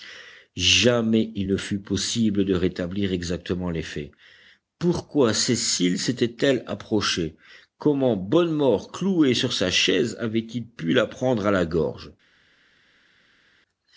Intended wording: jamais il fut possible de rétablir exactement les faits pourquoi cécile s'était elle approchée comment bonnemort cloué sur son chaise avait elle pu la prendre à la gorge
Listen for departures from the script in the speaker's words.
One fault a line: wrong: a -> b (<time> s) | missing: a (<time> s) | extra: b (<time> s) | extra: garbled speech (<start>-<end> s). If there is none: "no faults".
extra: ne (1.5 s)
wrong: son -> sa (9.5 s)
wrong: elle -> il (10.5 s)